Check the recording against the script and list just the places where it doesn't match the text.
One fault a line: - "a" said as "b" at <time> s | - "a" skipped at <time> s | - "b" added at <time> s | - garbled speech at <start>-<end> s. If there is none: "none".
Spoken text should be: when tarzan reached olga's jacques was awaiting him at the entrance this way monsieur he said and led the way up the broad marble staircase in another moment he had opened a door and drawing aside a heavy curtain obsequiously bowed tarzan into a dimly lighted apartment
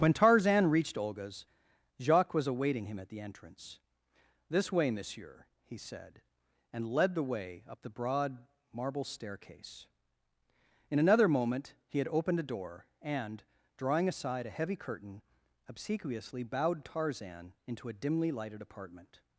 none